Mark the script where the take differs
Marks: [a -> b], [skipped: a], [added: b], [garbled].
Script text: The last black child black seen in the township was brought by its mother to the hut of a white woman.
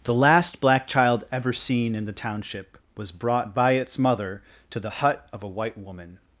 The last black child [black -> ever] seen in the township was brought by its mother to the hut of a white woman.